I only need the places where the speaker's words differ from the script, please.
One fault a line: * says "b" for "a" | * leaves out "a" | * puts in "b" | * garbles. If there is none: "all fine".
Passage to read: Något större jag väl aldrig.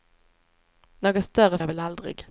all fine